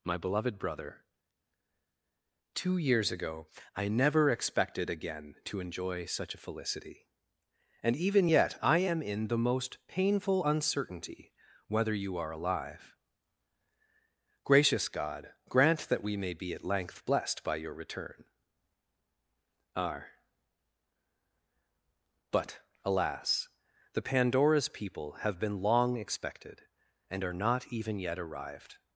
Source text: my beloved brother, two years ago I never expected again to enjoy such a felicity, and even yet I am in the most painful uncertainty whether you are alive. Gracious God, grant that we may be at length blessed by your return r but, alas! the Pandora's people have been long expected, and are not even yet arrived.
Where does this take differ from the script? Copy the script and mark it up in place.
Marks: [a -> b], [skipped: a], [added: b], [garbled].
my beloved brother, two years ago I never expected again to enjoy such a felicity, and even yet I am in the most painful uncertainty whether you are alive. Gracious God, grant that we may be at length blessed by your return r but, alas! the Pandora's people have been long expected, and are not even yet arrived.